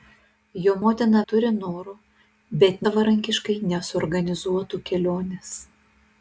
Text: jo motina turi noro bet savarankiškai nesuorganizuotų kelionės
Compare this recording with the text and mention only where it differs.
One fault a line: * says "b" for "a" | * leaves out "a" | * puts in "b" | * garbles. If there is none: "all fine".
all fine